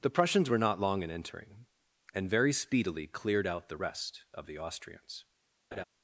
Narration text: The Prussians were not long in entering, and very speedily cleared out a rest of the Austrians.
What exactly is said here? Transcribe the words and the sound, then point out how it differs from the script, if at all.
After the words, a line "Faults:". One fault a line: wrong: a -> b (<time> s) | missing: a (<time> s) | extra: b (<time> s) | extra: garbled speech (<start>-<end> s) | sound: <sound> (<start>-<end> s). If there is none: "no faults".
The Prussians were not long in entering, and very speedily cleared out the rest of the Austrians.
Faults:
wrong: a -> the (3.7 s)
sound: laugh (5.7-5.8 s)